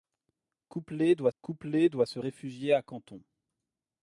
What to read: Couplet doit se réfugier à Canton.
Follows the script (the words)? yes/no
no